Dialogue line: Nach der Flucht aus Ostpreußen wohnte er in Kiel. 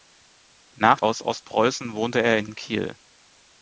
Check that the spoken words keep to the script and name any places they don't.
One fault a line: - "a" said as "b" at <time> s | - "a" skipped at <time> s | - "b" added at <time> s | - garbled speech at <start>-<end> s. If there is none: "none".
- "der Flucht" skipped at 1.0 s
- "in" added at 2.4 s